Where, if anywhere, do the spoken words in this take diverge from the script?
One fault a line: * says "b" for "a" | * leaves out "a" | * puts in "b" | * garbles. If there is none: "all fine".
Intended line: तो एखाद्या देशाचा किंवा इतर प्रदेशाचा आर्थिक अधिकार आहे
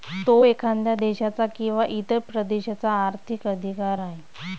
all fine